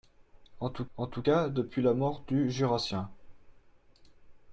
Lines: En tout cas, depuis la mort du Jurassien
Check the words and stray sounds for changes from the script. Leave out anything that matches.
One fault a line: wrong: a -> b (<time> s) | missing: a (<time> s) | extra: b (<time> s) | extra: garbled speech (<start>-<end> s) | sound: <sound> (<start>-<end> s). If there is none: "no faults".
extra: en tout (1.0 s)